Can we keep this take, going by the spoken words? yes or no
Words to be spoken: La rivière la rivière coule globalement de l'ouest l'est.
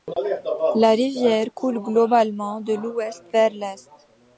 no